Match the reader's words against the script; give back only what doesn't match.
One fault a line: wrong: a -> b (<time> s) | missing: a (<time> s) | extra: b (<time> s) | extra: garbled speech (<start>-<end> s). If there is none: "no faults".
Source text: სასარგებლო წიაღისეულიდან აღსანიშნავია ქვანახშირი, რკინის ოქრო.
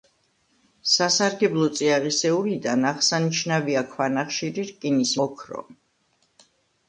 no faults